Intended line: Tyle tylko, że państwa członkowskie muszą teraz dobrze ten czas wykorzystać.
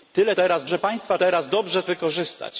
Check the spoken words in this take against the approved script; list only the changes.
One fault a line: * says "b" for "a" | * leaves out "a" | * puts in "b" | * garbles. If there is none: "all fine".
* says "teraz" for "tylko"
* leaves out "członkowskie muszą"
* leaves out "ten czas"